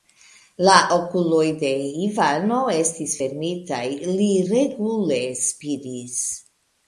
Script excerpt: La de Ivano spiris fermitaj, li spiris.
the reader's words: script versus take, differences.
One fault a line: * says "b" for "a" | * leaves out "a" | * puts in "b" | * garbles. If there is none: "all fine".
* puts in "okuloj"
* says "estis" for "spiris"
* puts in "regule"